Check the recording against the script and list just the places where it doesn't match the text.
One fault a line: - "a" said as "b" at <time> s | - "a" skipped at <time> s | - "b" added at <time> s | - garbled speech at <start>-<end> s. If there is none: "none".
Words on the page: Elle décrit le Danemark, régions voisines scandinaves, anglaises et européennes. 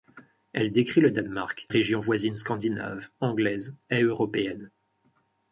none